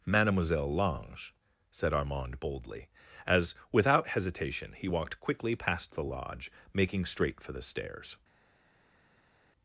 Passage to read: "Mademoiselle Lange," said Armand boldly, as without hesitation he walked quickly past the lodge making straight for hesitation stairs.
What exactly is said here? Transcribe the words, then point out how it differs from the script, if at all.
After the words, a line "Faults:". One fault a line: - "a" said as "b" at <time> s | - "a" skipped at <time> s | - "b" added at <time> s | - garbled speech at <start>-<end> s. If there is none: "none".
"Mademoiselle Lange," said Armand boldly, as without hesitation he walked quickly past the lodge making straight for the stairs.
Faults:
- "hesitation" said as "the" at 7.5 s